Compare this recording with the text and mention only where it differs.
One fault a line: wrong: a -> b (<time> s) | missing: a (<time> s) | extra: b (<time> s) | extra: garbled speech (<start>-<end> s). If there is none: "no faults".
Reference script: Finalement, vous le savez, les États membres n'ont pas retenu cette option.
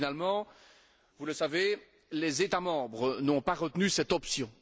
no faults